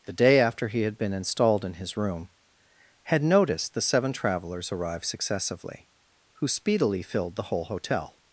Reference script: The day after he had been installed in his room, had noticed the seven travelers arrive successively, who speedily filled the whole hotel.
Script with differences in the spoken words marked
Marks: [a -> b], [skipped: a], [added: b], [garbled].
The day after he had been installed in his room, had noticed the seven travelers arrive successively, who speedily filled the whole hotel.